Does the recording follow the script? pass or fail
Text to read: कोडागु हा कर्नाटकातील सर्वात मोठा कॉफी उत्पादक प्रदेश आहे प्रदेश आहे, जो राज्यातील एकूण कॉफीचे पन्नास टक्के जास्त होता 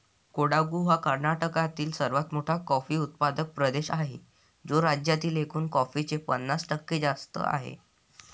fail